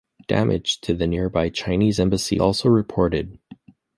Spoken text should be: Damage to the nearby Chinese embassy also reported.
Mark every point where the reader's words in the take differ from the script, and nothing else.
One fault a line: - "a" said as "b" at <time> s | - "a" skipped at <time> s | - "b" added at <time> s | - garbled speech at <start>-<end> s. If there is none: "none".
none